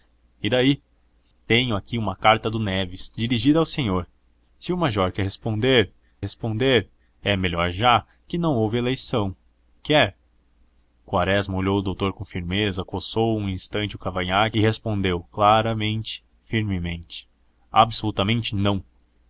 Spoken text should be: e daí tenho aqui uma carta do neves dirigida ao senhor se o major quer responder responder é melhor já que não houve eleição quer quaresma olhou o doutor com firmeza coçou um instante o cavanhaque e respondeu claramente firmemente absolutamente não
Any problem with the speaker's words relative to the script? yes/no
no